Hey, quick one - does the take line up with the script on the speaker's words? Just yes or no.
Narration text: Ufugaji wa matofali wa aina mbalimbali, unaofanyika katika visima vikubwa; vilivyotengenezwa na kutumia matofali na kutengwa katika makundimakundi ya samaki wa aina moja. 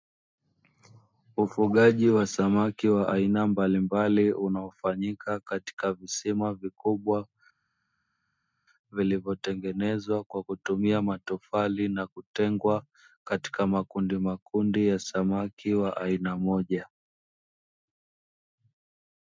no